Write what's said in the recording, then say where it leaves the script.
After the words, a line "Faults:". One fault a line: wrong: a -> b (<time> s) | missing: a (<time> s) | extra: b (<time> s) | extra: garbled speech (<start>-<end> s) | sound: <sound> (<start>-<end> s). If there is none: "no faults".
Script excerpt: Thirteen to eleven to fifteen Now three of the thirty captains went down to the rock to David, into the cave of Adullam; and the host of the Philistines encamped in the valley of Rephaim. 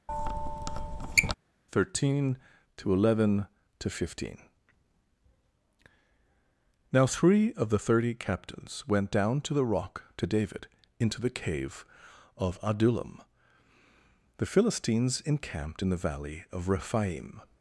Thirteen to eleven to fifteen Now three of the thirty captains went down to the rock to David, into the cave of Adullam; the Philistines encamped in the valley of Rephaim.
Faults:
sound: squeak (0.1-1.3 s)
missing: and the host of (13.2 s)